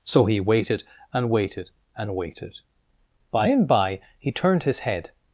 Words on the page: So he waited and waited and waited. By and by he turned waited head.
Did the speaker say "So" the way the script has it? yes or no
yes